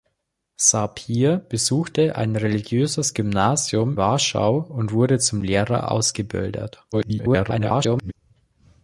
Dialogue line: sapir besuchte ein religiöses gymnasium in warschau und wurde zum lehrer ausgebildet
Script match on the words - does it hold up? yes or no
no